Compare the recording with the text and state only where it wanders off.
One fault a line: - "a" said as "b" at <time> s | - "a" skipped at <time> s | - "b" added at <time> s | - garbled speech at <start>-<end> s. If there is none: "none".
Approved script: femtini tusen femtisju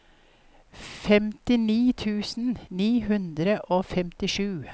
- "ni hundre og" added at 2.7 s